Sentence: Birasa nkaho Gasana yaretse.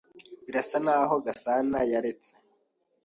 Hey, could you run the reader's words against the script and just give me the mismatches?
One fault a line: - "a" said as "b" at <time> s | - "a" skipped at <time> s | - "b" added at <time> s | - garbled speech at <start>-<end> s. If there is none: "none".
none